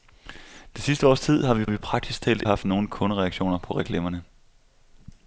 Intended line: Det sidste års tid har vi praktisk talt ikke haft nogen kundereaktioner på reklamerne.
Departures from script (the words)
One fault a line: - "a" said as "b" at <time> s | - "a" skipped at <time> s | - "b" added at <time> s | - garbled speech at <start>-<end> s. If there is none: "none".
- "vi" added at 1.6 s
- "ikke" skipped at 2.4 s